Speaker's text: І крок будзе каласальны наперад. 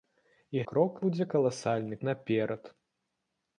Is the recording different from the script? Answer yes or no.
no